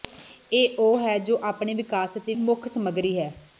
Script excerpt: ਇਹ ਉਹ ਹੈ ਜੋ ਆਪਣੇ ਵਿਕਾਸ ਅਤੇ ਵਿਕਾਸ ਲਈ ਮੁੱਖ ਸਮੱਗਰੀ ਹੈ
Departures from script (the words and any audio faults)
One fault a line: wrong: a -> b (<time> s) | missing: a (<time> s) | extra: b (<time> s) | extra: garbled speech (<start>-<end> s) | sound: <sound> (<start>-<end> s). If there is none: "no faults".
missing: ਵਿਕਾਸ ਲਈ (2.4 s)